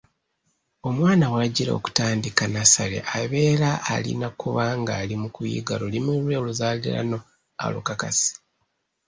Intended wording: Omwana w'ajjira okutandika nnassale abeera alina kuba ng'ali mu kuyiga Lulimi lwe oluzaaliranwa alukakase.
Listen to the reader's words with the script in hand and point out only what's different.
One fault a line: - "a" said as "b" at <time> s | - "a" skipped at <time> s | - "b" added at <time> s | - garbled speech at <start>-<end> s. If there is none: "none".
none